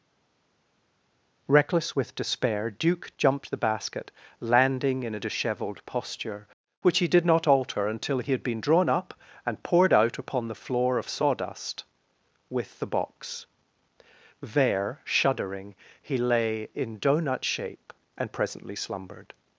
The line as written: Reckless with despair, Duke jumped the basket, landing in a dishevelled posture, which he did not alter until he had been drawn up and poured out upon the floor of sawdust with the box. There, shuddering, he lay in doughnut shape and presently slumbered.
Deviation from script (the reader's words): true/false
false